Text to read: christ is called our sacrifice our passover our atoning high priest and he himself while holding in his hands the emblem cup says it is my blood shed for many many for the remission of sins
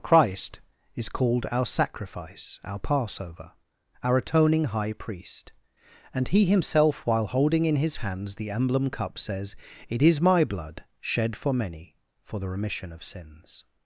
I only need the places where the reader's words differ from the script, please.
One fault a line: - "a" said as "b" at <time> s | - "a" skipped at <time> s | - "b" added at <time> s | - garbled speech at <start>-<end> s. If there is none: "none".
- "many" skipped at 12.0 s